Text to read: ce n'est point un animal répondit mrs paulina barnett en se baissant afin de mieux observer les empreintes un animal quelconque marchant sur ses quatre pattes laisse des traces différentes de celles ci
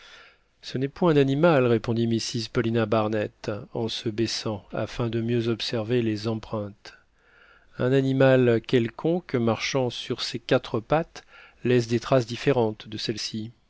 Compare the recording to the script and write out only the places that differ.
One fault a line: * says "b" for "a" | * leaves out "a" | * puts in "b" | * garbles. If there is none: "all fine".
all fine